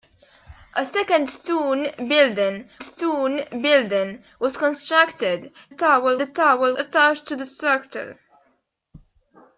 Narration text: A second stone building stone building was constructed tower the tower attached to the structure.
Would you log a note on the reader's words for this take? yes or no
no